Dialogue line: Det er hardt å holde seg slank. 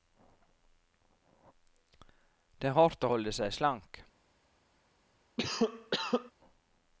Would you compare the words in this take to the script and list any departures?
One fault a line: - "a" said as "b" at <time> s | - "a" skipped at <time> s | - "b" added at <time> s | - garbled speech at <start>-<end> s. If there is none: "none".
none